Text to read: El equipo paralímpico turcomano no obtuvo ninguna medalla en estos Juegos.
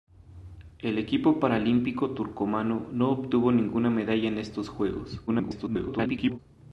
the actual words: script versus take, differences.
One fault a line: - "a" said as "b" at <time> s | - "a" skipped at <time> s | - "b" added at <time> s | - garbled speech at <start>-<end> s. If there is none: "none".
- garbled speech at 5.3-6.4 s